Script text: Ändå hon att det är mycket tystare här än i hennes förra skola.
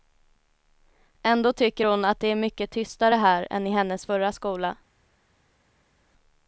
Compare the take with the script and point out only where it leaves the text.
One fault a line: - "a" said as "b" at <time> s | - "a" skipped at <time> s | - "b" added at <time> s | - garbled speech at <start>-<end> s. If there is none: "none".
- "tycker" added at 1.5 s